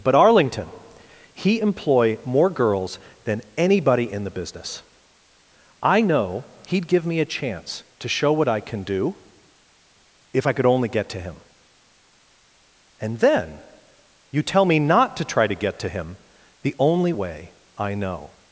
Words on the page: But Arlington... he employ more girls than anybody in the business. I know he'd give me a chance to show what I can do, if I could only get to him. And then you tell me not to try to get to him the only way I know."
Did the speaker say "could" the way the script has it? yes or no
yes